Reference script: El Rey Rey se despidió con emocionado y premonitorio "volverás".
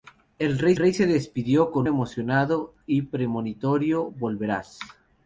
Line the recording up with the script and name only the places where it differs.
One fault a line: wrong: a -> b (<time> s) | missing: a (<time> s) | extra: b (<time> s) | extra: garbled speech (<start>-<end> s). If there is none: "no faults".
no faults